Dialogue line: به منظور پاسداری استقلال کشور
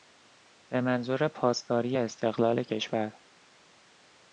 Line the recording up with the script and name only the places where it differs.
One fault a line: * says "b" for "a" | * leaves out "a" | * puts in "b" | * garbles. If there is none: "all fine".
all fine